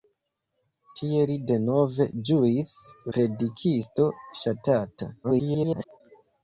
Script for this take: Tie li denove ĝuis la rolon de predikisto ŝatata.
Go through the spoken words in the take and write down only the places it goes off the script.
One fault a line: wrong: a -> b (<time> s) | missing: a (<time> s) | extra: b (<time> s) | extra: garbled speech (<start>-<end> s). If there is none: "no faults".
missing: la rolon de (2.7 s)
extra: garbled speech (5.2-6.0 s)